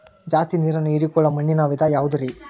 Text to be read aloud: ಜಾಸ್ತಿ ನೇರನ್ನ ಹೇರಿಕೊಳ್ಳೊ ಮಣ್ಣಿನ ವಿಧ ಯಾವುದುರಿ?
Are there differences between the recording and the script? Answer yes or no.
no